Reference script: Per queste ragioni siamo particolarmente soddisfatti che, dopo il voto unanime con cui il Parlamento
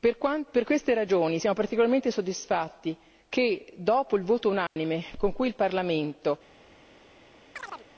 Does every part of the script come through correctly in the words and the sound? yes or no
no